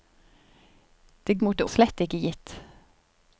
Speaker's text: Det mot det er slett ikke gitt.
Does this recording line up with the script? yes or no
yes